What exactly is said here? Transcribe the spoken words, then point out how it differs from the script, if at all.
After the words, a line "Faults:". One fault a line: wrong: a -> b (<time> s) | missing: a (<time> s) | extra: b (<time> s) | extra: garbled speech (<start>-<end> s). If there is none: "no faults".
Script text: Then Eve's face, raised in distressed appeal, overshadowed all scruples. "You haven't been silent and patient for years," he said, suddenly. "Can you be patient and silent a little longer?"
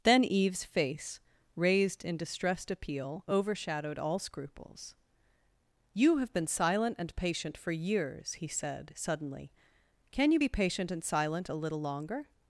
Then Eve's face, raised in distressed appeal, overshadowed all scruples. "You have been silent and patient for years," he said, suddenly. "Can you be patient and silent a little longer?"
Faults:
wrong: haven't -> have (6.2 s)